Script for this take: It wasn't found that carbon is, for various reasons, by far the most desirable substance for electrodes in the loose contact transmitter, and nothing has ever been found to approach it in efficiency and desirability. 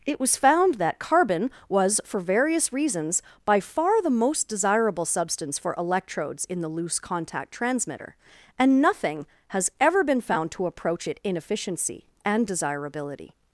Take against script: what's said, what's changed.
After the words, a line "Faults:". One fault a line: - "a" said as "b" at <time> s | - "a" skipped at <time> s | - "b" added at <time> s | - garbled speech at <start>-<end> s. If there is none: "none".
It was found that carbon was, for various reasons, by far the most desirable substance for electrodes in the loose contact transmitter, and nothing has ever been found to approach it in efficiency and desirability.
Faults:
- "wasn't" said as "was" at 0.2 s
- "is" said as "was" at 1.7 s